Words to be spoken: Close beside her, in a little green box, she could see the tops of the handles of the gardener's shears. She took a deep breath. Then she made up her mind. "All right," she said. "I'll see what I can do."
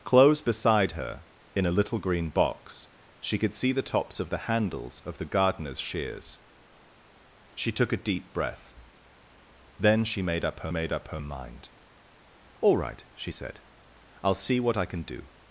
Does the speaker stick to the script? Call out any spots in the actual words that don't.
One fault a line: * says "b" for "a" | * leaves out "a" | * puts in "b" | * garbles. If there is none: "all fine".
* puts in "made up her"